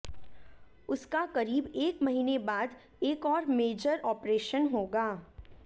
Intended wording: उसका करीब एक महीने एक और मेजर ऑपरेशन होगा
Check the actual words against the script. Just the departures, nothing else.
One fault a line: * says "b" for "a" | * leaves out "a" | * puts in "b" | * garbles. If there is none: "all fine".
* puts in "बाद"